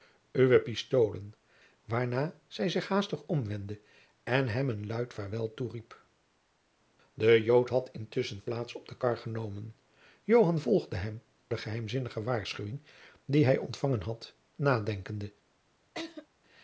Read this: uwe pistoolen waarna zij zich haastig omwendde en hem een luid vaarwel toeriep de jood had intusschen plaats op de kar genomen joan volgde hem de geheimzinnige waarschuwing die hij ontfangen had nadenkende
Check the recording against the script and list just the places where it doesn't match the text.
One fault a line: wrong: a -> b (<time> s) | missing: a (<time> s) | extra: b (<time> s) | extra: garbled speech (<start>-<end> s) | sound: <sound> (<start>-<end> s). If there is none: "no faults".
sound: laugh (15.9-16.3 s)